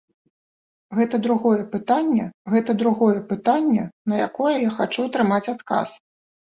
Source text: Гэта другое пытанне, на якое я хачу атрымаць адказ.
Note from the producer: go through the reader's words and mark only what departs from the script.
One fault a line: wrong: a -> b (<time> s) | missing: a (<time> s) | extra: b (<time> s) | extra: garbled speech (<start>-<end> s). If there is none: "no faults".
extra: гэта другое пытанне (2.5 s)